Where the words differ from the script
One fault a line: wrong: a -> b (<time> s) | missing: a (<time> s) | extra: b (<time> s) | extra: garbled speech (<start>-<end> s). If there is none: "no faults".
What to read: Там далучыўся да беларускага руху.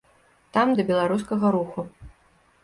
missing: далучыўся (0.7 s)